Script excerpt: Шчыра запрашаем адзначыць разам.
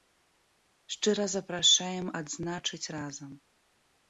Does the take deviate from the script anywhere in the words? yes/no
no